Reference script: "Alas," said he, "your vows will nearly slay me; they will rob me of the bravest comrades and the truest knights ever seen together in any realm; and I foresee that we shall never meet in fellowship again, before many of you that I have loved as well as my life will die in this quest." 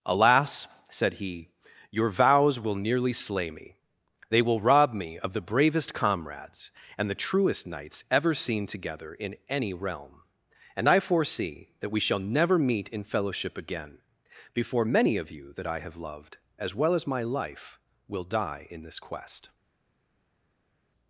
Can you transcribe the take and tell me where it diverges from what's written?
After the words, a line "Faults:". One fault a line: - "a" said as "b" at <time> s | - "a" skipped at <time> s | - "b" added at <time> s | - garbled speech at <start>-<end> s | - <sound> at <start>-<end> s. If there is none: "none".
"Alas," said he, "your vows will nearly slay me; they will rob me of the bravest comrades and the truest knights ever seen together in any realm; and I foresee that we shall never meet in fellowship again, before many of you that I have loved as well as my life will die in this quest."
Faults:
none